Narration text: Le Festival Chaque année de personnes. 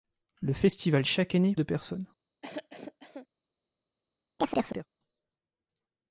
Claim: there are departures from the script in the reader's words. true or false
false